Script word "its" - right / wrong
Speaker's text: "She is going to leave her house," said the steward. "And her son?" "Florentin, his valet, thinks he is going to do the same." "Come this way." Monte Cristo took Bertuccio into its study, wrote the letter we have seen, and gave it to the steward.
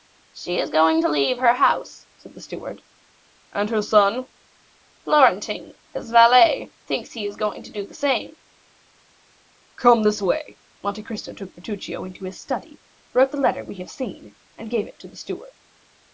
wrong